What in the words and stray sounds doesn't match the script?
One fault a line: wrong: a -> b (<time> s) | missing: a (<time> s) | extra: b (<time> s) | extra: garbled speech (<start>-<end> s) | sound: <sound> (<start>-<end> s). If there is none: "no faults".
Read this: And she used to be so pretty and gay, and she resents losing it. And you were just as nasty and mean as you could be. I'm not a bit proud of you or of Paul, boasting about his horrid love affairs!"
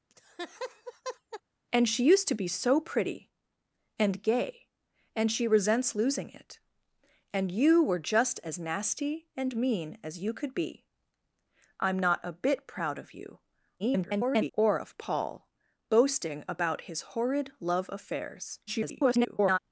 sound: laugh (0.1-1.4 s)
extra: garbled speech (13.8-14.5 s)
extra: garbled speech (18.7-19.6 s)